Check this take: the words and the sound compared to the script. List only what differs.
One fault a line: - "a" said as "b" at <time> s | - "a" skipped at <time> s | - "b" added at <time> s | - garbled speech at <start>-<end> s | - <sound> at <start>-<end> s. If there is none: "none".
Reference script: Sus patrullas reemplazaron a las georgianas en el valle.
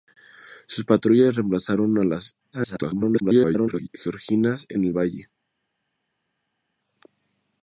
- garbled speech at 2.5-3.9 s